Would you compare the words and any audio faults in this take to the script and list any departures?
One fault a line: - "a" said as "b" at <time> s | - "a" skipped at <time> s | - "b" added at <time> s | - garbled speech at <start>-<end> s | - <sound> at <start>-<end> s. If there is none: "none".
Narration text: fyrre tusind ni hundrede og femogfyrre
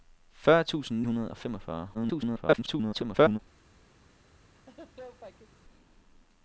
- "ni" skipped at 1.0 s
- garbled speech at 1.9-3.4 s
- laugh at 4.6-5.6 s